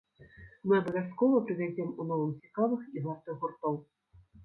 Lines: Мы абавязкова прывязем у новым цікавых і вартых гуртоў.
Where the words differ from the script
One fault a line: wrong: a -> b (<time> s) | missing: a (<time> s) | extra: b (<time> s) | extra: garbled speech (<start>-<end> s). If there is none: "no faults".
no faults